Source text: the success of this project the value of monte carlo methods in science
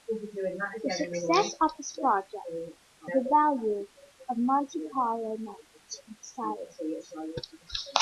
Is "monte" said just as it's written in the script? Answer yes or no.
yes